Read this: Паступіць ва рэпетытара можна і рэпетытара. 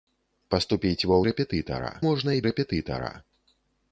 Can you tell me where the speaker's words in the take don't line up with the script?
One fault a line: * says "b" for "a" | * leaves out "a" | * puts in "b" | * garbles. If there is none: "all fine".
all fine